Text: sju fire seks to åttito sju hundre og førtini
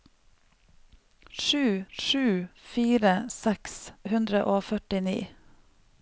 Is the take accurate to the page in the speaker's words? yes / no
no